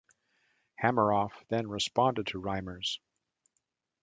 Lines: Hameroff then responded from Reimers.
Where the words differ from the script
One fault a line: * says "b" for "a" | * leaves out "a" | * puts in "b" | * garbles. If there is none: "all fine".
* says "to" for "from"